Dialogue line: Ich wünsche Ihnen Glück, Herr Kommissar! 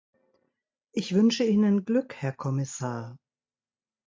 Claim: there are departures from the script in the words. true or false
false